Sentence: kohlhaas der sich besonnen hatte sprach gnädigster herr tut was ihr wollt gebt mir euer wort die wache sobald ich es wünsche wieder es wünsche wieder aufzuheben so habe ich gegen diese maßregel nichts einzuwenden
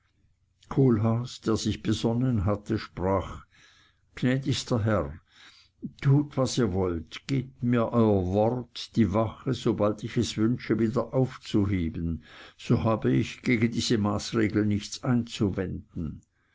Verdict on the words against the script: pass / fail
fail